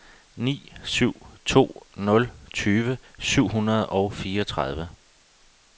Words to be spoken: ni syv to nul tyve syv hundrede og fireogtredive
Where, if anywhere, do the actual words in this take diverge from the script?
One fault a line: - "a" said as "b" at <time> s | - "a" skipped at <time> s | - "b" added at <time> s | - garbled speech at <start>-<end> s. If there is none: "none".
none